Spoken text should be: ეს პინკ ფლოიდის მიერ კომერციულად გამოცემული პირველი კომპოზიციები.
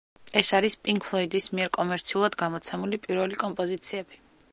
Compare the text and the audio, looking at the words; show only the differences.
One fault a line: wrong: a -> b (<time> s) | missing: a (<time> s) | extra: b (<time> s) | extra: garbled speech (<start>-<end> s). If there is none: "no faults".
extra: არის (0.6 s)